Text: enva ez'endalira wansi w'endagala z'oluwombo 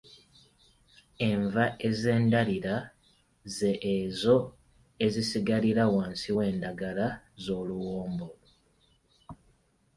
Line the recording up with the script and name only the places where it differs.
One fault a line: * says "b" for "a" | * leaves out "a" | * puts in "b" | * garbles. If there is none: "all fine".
* puts in "ze ezo ezisigalira"